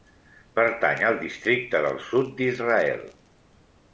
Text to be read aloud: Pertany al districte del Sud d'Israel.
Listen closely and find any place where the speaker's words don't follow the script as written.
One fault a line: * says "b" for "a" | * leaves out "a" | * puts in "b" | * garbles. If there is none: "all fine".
all fine